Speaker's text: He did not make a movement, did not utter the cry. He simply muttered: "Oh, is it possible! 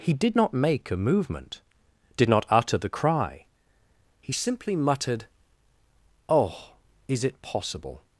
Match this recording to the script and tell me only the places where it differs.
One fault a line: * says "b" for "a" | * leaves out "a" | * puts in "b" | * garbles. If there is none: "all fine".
all fine